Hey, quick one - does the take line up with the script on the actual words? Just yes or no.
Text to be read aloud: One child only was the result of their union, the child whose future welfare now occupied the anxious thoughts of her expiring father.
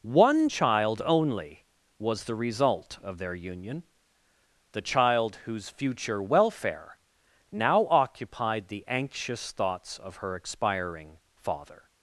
yes